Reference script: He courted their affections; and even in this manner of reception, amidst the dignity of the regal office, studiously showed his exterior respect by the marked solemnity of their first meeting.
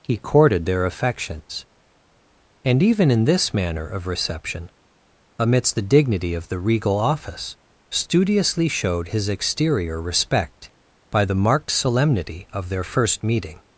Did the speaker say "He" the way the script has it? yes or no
yes